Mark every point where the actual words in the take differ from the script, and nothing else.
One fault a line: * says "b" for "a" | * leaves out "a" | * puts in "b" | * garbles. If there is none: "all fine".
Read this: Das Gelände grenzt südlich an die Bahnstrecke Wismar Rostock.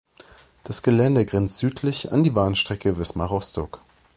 all fine